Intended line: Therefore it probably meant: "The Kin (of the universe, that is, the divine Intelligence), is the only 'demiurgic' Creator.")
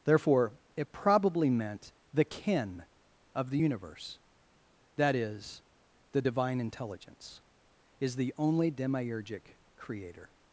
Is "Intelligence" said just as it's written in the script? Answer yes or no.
yes